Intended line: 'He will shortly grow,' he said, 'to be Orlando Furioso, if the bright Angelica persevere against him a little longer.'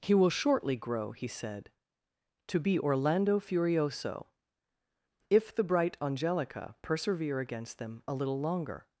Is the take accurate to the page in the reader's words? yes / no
no